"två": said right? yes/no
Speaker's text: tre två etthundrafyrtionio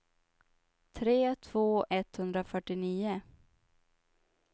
yes